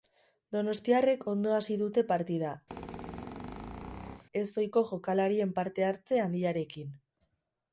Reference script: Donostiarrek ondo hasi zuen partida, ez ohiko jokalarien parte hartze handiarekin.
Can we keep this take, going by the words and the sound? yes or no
no